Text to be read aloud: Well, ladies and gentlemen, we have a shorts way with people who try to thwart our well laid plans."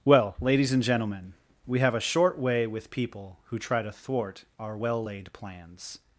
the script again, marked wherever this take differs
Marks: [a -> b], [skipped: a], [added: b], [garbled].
Well, ladies and gentlemen, we have a [shorts -> short] way with people who try to thwart our well laid plans."